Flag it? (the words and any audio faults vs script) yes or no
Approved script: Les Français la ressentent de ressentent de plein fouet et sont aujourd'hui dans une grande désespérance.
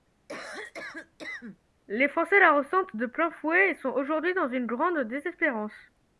yes